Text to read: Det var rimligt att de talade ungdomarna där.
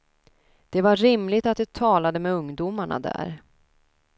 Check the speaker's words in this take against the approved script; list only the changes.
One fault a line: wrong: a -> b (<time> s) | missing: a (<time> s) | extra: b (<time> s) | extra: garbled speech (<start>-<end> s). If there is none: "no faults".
extra: med (2.2 s)